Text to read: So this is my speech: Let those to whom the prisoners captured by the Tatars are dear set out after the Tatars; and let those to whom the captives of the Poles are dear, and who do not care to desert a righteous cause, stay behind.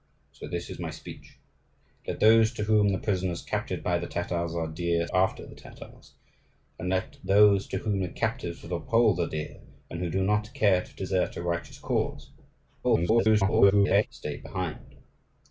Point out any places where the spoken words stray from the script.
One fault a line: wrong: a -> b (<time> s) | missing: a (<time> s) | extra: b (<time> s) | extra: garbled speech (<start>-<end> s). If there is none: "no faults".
missing: set out (5.1 s)
extra: garbled speech (12.8-14.1 s)